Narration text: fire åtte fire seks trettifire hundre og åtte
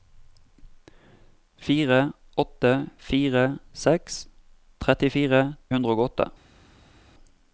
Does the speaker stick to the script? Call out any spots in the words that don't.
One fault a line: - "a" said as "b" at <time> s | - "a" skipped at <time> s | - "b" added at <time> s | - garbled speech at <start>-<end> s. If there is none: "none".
none